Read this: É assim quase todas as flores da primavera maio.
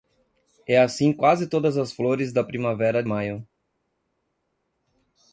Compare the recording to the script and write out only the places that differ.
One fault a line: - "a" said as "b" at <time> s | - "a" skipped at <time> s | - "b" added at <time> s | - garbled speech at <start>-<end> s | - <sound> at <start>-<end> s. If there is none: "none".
none